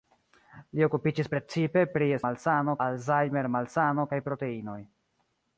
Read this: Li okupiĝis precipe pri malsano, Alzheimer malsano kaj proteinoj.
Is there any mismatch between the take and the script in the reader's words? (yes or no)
no